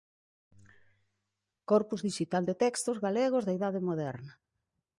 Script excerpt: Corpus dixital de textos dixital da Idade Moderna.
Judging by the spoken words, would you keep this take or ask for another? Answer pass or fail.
fail